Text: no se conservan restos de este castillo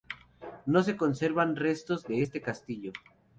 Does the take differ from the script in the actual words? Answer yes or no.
no